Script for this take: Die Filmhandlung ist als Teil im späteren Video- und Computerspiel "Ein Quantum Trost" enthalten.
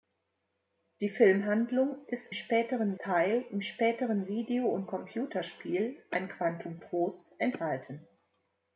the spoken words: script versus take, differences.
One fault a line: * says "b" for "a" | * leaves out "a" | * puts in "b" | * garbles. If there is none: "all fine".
* says "späteren" for "als"